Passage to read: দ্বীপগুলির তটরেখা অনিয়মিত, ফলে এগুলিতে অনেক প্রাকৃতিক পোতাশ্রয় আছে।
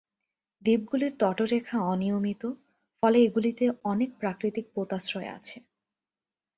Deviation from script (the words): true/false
false